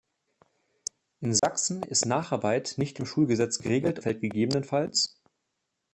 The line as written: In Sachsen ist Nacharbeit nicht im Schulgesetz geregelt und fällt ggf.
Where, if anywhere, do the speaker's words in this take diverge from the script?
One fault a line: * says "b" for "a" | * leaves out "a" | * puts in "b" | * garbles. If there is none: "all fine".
* leaves out "und"